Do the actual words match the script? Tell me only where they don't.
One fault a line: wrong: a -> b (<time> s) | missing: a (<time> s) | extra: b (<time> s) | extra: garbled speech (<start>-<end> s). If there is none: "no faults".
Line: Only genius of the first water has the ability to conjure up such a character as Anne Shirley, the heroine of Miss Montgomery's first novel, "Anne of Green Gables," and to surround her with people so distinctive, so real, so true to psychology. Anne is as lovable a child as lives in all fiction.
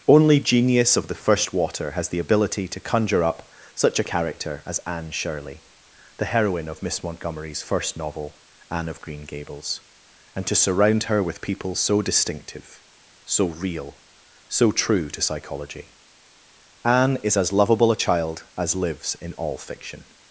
no faults